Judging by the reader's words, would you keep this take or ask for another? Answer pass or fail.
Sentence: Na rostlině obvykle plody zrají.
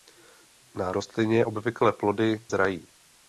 pass